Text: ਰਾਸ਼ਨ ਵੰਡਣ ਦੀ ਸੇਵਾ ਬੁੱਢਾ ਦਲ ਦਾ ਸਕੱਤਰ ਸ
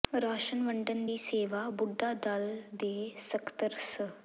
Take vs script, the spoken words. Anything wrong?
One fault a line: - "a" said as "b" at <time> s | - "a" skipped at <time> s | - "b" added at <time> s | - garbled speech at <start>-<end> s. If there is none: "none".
- "ਦਾ" said as "ਦੇ" at 2.8 s